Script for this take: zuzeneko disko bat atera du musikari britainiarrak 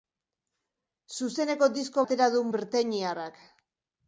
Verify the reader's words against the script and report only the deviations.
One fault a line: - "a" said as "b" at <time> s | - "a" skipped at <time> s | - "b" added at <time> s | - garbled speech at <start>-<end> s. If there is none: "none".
- "bat" skipped at 2.0 s
- "musikari" skipped at 2.4 s